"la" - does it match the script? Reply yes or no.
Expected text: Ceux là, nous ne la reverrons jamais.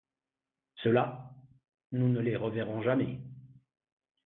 no